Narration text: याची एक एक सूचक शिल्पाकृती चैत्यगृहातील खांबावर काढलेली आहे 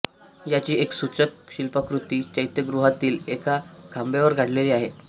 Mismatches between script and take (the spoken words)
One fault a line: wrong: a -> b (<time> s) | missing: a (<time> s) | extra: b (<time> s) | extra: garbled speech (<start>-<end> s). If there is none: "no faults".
missing: एक (0.9 s)
extra: एका (3.3 s)